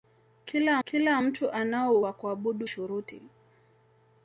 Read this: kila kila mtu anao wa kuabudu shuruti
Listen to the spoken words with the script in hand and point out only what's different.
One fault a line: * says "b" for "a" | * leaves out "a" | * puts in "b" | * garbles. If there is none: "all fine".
all fine